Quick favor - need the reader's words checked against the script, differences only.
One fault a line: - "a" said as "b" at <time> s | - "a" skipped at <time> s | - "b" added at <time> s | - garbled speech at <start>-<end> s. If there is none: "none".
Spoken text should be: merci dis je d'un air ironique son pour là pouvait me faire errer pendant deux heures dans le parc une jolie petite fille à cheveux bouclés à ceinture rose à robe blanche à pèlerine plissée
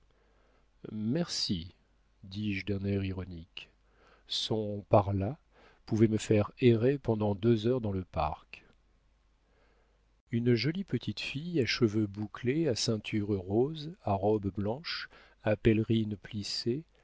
- "pour" said as "par" at 4.9 s